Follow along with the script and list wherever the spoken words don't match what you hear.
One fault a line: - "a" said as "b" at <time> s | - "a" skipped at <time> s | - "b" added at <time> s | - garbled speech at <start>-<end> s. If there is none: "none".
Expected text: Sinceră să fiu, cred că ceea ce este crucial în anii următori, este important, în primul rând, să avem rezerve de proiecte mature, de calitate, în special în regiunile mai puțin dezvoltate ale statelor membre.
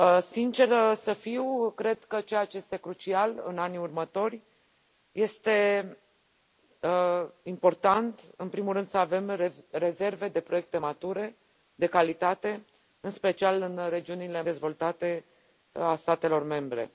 - "mai puțin" skipped at 14.4 s